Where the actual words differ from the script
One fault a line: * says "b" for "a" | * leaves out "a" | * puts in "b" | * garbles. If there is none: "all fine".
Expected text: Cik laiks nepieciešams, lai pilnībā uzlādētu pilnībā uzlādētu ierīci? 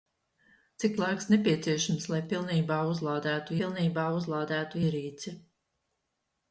all fine